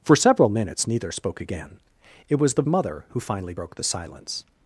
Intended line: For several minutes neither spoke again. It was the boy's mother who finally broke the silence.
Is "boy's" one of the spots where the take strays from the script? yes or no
yes